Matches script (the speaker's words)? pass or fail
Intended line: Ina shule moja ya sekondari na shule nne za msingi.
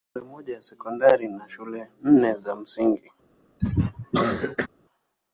pass